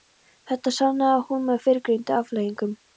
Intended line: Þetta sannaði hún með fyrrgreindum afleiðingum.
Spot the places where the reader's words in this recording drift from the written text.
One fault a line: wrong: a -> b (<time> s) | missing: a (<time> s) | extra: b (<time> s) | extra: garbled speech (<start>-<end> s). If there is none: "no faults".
no faults